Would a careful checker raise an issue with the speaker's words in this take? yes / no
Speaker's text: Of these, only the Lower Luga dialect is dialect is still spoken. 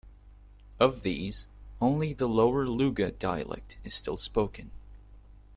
yes